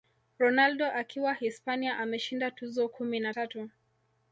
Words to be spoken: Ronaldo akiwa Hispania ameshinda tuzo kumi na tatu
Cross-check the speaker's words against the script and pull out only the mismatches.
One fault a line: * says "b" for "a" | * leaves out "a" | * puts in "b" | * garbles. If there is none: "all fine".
all fine